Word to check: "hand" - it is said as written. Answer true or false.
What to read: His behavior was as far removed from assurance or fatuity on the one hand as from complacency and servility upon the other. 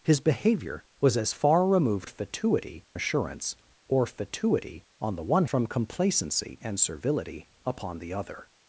false